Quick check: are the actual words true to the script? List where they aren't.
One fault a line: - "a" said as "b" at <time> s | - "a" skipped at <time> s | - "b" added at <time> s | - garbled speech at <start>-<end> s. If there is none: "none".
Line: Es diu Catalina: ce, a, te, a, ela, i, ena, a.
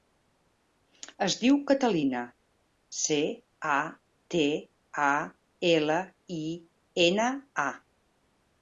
none